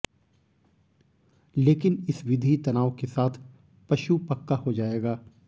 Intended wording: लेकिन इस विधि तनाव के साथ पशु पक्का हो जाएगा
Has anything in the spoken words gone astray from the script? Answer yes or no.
no